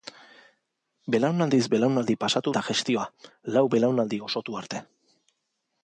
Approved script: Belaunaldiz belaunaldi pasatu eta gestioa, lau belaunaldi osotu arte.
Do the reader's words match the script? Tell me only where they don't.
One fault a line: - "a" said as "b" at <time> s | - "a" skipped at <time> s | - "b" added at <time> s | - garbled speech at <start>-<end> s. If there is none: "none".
none